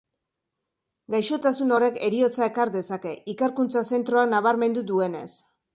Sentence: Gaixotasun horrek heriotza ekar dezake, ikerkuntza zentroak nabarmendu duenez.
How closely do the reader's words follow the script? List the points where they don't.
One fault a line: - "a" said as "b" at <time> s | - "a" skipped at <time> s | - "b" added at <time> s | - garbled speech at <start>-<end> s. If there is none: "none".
none